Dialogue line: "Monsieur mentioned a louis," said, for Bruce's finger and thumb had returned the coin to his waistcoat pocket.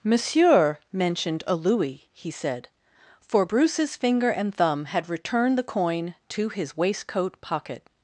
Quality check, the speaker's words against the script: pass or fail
fail